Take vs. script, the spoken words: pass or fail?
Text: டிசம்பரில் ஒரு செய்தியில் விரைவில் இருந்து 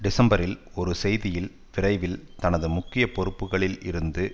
fail